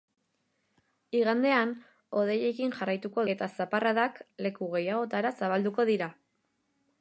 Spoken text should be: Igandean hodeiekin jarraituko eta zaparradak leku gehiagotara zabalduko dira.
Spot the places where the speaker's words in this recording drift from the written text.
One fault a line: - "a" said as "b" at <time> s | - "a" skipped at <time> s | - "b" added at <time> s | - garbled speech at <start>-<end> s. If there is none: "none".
none